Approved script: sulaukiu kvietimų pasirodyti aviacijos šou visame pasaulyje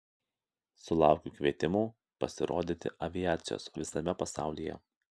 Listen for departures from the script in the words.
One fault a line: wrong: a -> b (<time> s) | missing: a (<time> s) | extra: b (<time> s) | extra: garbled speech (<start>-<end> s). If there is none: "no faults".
missing: šou (3.7 s)